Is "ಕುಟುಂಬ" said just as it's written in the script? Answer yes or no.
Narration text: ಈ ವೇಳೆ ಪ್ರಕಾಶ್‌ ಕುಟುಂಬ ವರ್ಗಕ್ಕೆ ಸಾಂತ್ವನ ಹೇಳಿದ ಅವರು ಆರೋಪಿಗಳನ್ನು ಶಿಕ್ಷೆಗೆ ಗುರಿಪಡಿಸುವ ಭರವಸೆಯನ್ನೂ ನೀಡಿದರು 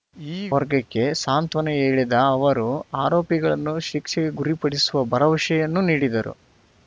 no